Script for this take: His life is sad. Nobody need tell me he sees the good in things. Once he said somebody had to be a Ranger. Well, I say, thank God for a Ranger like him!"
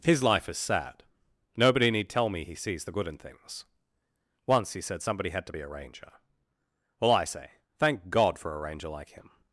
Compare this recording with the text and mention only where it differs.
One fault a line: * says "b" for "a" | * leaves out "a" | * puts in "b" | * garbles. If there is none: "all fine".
all fine